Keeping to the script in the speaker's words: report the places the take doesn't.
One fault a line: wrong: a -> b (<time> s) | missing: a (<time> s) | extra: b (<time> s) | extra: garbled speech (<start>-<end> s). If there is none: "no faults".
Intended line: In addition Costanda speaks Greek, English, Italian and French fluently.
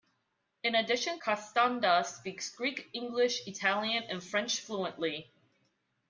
no faults